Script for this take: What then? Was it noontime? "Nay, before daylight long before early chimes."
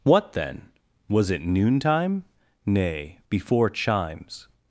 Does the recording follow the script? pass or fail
fail